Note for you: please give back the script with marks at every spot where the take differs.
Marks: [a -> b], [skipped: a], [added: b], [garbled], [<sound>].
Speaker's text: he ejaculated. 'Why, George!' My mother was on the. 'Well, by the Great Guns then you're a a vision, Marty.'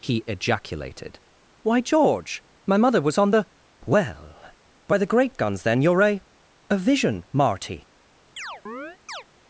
he ejaculated. 'Why, George!' My mother was on the. 'Well, by the Great Guns then you're a a vision, Marty.' [chirp]